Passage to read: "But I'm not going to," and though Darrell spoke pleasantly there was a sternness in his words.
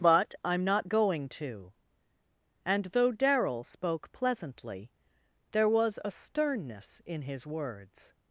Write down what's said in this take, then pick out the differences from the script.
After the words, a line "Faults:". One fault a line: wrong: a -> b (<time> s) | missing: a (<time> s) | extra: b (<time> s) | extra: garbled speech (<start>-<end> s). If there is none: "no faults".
"But I'm not going to," and though Darrell spoke pleasantly there was a sternness in his words.
Faults:
no faults